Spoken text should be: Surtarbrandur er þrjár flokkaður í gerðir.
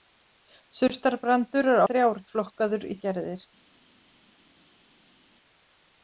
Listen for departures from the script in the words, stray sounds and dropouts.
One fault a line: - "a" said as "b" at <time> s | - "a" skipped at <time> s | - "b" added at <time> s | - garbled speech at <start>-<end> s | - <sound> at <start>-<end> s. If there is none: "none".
none